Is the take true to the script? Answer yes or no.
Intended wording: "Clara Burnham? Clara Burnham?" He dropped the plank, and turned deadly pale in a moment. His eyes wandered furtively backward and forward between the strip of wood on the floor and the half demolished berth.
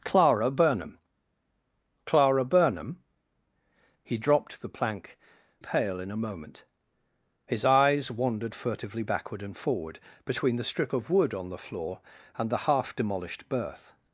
no